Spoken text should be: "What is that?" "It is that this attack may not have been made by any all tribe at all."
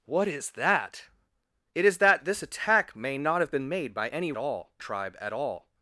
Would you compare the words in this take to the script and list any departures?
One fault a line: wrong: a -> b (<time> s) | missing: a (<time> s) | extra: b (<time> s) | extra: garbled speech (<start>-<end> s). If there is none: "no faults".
no faults